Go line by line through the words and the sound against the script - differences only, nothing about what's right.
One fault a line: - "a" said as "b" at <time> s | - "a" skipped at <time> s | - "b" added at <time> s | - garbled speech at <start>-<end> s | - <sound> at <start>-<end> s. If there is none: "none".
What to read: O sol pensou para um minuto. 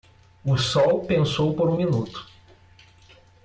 - "para" said as "por" at 1.5 s